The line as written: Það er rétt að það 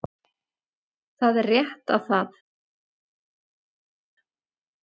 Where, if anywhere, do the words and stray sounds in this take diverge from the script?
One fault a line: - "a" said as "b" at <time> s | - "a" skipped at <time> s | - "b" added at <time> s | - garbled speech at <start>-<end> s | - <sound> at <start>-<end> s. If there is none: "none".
none